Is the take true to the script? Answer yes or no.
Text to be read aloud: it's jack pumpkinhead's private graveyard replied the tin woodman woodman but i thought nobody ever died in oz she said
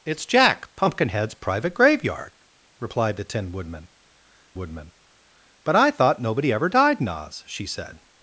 yes